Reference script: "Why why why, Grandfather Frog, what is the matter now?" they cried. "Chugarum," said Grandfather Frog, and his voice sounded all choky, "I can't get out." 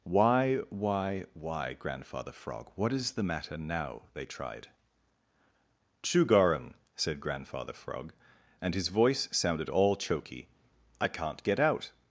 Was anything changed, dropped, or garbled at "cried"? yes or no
yes